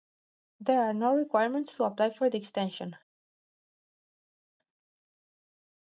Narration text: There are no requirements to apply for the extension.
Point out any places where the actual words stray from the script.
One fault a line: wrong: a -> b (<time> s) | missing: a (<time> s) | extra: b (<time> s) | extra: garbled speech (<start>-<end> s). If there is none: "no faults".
no faults